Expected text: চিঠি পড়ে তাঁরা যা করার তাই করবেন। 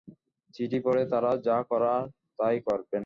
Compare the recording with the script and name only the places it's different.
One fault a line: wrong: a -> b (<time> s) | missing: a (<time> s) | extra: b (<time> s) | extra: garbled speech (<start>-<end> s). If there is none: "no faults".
no faults